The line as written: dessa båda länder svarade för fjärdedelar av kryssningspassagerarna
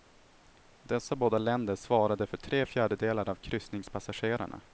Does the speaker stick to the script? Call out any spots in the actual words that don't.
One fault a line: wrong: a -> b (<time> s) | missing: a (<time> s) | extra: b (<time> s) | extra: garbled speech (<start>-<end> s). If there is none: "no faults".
extra: tre (2.4 s)